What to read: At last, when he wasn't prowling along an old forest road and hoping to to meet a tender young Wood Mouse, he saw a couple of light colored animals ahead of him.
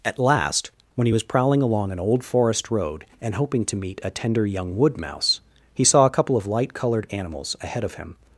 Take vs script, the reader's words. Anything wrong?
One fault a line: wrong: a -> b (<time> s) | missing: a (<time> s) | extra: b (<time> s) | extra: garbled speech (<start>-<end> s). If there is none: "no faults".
wrong: wasn't -> was (1.1 s)
missing: to (3.8 s)